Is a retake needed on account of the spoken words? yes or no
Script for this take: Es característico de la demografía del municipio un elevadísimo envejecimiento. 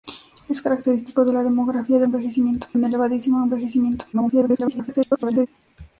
yes